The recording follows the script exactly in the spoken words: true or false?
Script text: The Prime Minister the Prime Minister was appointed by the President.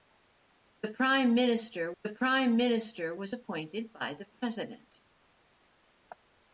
true